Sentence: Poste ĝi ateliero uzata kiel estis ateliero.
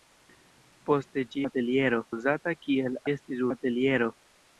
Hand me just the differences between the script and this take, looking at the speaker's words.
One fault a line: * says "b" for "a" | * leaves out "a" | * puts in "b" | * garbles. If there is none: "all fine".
all fine